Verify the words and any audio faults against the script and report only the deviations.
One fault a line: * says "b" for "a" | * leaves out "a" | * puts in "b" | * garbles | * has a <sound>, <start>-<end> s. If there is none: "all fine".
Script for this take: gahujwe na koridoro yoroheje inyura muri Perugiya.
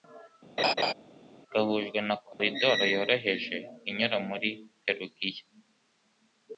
* has a laugh, 0.6-0.9 s
* has a dropout, 2.3-2.4 s